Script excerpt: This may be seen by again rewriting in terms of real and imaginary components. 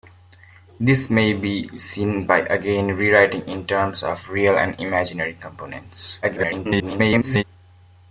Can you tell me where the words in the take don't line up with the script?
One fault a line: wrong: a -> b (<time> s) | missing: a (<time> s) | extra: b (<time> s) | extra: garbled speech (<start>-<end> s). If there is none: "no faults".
extra: garbled speech (6.2-7.4 s)